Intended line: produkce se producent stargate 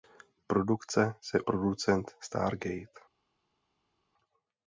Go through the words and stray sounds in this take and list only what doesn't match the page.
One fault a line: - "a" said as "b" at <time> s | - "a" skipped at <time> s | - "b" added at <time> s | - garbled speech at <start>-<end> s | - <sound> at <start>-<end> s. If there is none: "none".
none